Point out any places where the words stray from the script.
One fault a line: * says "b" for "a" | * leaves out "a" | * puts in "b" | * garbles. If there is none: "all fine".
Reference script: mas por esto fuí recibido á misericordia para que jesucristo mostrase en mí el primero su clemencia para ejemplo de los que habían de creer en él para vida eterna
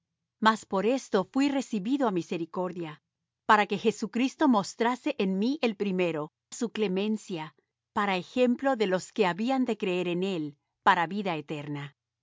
all fine